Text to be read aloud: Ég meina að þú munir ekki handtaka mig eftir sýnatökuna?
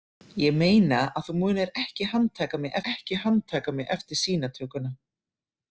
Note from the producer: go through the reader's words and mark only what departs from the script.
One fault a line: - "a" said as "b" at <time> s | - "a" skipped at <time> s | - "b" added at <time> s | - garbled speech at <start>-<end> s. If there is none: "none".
- "ekki handtaka mig" added at 2.9 s